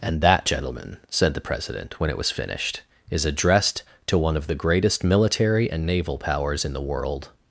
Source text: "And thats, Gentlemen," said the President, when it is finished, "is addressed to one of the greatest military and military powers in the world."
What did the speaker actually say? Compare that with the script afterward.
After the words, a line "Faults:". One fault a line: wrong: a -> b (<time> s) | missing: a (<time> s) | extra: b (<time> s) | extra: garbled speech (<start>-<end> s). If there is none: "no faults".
"And that, Gentlemen," said the President, when it was finished, "is addressed to one of the greatest military and naval powers in the world."
Faults:
wrong: thats -> that (0.2 s)
wrong: is -> was (2.2 s)
wrong: military -> naval (5.8 s)